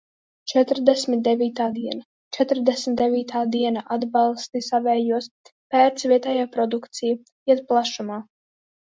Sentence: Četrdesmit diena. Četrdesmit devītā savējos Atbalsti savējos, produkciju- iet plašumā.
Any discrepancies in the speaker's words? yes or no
yes